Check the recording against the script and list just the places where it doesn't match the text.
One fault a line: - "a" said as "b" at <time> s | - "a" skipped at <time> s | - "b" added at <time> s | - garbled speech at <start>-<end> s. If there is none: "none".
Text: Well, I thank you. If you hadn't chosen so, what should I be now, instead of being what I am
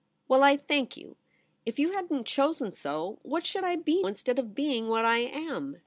- "now" skipped at 4.0 s